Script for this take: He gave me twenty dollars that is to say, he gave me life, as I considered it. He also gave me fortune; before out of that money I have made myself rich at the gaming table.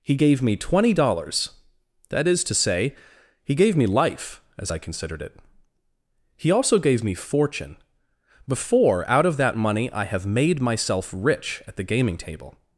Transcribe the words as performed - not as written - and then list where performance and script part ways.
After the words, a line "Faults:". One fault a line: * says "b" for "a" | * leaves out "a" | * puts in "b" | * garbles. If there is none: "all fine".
He gave me twenty dollars that is to say, he gave me life, as I considered it. He also gave me fortune; before out of that money I have made myself rich at the gaming table.
Faults:
all fine